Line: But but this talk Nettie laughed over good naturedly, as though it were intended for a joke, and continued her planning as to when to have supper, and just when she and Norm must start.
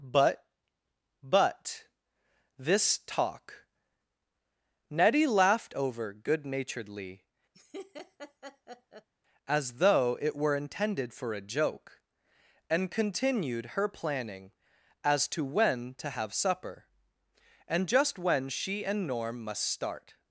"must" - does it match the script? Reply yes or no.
yes